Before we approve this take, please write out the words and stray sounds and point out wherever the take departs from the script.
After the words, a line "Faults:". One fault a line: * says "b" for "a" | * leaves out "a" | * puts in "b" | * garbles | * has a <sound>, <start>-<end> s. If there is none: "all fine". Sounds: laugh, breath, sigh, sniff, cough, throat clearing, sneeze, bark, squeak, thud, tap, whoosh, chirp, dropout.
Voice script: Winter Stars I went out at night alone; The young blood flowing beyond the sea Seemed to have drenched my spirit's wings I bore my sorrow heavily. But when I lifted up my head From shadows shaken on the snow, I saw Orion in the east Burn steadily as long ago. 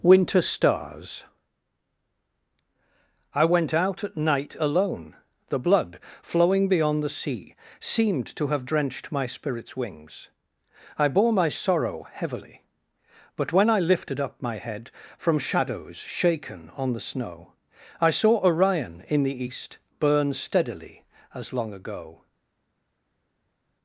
Winter Stars I went out at night alone; The blood flowing beyond the sea Seemed to have drenched my spirit's wings I bore my sorrow heavily. But when I lifted up my head From shadows shaken on the snow, I saw Orion in the east Burn steadily as long ago.
Faults:
* leaves out "young"